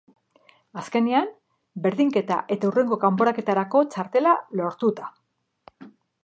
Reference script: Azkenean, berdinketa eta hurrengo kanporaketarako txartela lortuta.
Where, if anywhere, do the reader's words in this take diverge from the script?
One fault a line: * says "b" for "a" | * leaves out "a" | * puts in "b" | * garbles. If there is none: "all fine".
all fine